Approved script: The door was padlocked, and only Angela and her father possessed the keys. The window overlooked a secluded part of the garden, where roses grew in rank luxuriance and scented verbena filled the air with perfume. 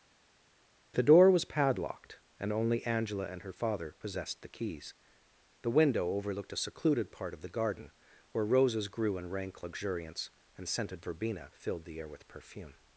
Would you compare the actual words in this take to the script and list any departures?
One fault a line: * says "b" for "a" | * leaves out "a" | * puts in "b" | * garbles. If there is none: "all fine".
all fine